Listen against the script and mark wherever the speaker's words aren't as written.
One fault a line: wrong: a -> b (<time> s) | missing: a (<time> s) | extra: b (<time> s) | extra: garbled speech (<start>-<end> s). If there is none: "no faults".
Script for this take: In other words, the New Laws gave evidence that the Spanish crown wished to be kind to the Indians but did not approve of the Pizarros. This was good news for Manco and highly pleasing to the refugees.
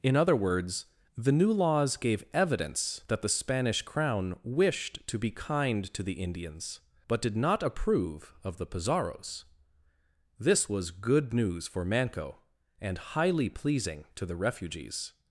no faults